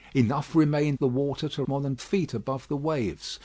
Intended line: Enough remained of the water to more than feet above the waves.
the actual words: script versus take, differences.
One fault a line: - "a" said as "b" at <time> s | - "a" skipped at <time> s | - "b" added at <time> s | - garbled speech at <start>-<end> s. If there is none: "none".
none